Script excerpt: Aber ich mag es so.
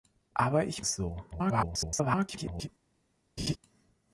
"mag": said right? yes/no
no